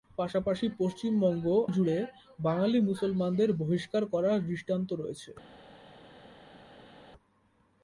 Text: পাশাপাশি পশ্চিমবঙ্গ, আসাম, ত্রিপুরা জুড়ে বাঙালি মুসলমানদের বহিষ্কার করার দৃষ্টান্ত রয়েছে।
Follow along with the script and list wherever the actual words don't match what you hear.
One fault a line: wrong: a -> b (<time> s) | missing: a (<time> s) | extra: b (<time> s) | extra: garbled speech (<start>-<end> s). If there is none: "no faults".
missing: আসাম ত্রিপুরা (1.4 s)